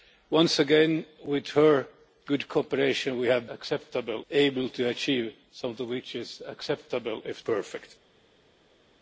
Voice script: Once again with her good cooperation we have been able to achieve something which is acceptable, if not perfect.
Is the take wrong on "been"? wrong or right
wrong